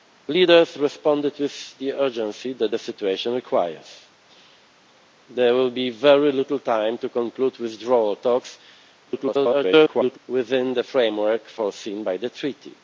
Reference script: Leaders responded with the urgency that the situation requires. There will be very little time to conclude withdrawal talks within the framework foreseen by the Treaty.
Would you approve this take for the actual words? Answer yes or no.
no